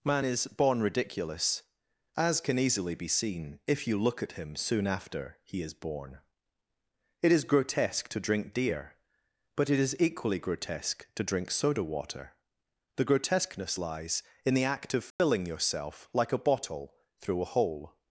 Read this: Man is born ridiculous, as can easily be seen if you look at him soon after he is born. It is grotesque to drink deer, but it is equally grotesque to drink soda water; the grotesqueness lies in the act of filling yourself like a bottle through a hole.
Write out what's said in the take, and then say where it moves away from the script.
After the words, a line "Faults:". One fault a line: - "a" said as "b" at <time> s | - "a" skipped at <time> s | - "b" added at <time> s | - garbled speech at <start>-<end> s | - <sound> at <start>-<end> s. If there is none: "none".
Man is born ridiculous, as can easily be seen if you look at him soon after he is born. It is grotesque to drink deer, but it is equally grotesque to drink soda water; the grotesqueness lies in the act of filling yourself like a bottle through a hole.
Faults:
- dropout at 15.1-15.2 s